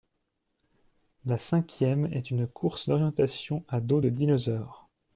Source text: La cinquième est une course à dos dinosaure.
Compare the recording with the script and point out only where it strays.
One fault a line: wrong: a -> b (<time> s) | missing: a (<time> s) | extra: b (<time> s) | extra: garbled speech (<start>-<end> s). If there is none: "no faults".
extra: d'orientation (2.9 s)
extra: de (4.0 s)